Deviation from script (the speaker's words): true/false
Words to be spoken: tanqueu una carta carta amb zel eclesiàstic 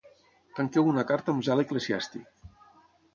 true